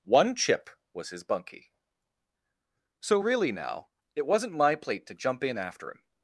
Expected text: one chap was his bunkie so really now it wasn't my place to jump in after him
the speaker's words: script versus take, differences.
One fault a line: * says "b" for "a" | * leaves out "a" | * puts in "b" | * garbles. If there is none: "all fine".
* says "chip" for "chap"
* says "plate" for "place"